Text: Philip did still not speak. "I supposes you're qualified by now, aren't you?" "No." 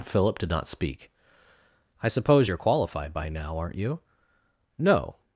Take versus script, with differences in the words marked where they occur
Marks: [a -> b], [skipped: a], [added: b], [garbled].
Philip did [skipped: still] not speak. "I [supposes -> suppose] you're qualified by now, aren't you?" "No."